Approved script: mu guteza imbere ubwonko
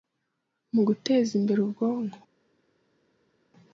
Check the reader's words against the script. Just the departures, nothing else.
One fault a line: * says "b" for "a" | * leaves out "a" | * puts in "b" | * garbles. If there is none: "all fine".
all fine